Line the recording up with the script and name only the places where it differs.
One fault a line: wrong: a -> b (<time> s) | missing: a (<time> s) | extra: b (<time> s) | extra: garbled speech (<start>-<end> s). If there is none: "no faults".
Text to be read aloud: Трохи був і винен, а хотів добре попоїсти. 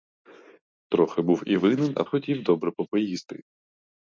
no faults